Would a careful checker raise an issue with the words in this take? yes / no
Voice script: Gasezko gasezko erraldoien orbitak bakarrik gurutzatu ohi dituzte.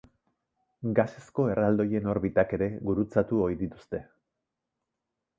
yes